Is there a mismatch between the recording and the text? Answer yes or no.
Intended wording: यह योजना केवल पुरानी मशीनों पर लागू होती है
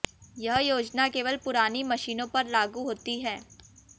no